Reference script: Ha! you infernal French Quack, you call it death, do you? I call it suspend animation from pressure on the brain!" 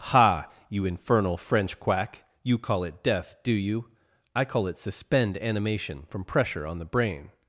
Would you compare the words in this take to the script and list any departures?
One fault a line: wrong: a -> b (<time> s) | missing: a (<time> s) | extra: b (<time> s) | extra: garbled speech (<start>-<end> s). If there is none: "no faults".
no faults